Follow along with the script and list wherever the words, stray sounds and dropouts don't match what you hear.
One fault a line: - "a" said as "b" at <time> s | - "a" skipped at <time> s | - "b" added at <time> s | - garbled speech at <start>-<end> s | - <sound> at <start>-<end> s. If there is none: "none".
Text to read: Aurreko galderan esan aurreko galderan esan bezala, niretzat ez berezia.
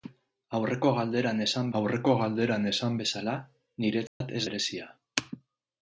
- dropout at 4.1-4.2 s